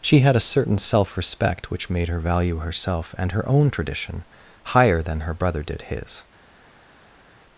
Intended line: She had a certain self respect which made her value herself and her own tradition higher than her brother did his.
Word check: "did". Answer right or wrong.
right